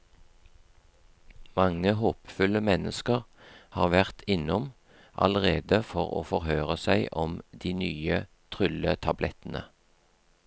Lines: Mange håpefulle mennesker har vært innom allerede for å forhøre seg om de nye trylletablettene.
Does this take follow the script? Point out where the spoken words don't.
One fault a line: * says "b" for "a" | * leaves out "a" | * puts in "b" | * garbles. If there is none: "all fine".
all fine